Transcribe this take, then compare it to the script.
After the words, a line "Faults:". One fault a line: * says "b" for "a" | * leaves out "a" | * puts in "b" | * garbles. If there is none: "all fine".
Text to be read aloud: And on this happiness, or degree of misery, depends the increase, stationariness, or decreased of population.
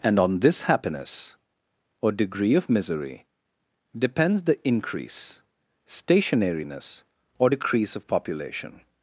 And on this happiness, or degree of misery, depends the increase, stationariness, or decrease of population.
Faults:
* says "decrease" for "decreased"